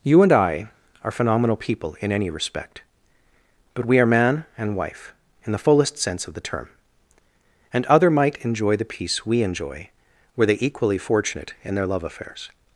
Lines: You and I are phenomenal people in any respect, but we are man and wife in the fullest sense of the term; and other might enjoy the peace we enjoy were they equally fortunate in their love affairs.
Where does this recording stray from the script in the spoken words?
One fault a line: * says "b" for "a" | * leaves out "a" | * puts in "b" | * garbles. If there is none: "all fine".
all fine